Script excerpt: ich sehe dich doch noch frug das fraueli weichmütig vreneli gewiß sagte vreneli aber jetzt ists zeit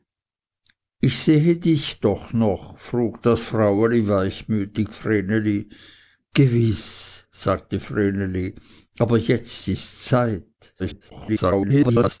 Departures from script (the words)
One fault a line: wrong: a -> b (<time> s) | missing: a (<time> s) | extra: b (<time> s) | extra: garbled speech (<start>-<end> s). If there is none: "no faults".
extra: garbled speech (10.8-12.2 s)